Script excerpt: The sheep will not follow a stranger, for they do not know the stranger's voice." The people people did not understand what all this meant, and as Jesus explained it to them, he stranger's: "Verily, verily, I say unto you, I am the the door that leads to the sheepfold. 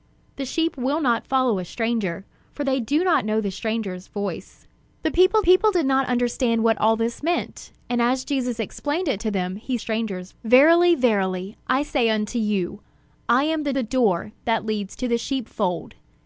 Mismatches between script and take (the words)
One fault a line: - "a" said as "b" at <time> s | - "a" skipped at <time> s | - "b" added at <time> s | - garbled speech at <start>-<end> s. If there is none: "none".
none